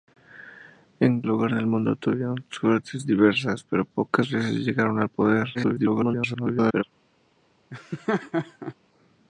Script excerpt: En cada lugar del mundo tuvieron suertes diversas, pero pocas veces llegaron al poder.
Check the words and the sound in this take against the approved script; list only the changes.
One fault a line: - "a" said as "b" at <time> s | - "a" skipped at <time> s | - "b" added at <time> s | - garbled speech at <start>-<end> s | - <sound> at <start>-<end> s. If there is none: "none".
- "cada" skipped at 1.2 s
- garbled speech at 5.5-6.8 s
- laugh at 7.7-8.7 s